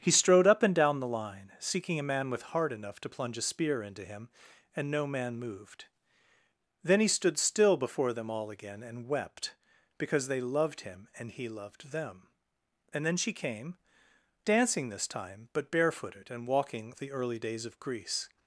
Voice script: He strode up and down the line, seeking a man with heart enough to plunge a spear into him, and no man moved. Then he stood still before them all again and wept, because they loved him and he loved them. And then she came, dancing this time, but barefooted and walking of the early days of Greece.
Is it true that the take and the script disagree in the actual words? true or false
false